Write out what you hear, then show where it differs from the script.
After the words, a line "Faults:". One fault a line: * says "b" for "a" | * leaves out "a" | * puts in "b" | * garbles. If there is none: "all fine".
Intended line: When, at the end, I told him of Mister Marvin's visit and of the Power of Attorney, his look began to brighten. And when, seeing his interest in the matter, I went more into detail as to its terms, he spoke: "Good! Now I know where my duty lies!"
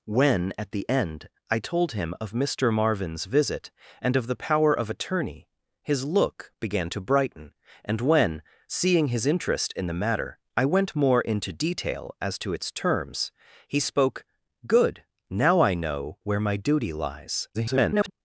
When, at the end, I told him of Mister Marvin's visit and of the Power of Attorney, his look began to brighten. And when, seeing his interest in the matter, I went more into detail as to its terms, he spoke: "Good! Now I know where my duty lies!" [garbled]
Faults:
* garbles